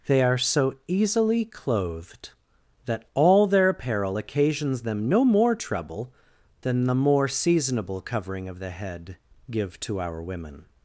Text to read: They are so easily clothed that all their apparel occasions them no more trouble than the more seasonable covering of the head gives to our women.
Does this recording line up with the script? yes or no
no